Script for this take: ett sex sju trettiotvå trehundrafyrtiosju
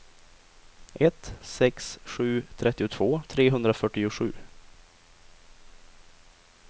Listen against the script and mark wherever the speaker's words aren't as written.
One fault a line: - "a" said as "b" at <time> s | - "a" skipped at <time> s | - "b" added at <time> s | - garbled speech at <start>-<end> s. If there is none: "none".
none